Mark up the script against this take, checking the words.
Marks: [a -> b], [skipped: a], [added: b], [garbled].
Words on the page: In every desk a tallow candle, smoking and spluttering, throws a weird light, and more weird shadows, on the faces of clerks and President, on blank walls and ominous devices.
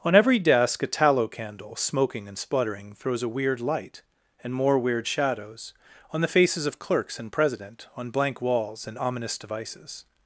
[In -> On] every desk a tallow candle, smoking and spluttering, throws a weird light, and more weird shadows, on the faces of clerks and President, on blank walls and ominous devices.